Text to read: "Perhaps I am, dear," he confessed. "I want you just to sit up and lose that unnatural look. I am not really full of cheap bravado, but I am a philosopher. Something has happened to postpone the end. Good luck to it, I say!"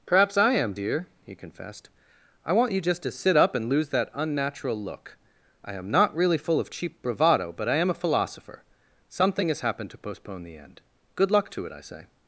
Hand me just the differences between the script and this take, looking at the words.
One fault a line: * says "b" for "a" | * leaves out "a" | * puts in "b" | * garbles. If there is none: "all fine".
all fine